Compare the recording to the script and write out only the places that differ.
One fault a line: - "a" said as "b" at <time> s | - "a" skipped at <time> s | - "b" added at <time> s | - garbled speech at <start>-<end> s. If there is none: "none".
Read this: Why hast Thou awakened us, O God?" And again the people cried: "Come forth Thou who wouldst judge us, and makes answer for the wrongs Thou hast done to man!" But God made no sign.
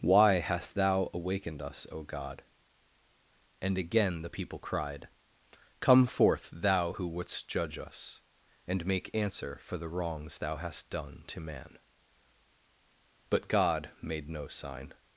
- "makes" said as "make" at 8.9 s